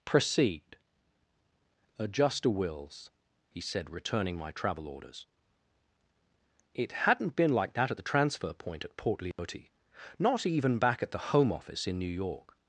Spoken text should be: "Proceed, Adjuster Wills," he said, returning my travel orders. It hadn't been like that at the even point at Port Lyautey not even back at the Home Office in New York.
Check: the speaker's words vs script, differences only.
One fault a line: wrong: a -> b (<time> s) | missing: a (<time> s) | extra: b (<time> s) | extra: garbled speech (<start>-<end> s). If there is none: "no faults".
wrong: even -> transfer (8.0 s)